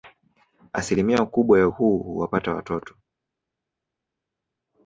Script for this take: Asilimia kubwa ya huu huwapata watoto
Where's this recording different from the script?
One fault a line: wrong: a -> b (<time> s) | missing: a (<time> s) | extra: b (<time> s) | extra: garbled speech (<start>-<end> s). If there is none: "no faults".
no faults